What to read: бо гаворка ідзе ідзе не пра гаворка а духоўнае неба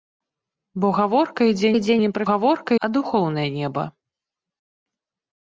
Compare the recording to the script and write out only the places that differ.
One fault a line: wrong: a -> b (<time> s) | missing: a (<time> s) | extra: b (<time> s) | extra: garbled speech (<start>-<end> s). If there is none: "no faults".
no faults